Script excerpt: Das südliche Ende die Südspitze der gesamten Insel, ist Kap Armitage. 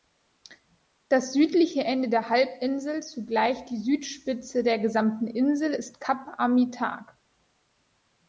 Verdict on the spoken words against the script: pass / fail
fail